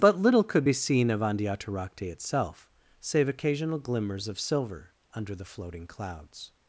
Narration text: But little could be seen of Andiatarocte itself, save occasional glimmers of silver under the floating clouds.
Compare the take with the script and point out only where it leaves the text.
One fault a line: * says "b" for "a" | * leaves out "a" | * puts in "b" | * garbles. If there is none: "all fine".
all fine